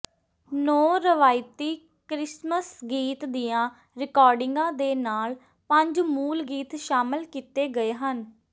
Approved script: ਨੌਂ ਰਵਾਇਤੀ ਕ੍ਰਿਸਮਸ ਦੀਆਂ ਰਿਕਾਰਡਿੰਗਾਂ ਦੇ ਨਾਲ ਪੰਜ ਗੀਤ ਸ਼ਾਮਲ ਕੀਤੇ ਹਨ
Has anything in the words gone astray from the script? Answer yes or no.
yes